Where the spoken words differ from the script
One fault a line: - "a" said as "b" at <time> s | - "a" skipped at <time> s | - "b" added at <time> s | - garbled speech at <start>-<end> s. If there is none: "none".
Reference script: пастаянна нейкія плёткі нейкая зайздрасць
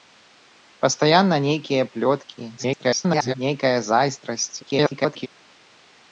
- garbled speech at 2.6-3.3 s
- garbled speech at 4.6-5.3 s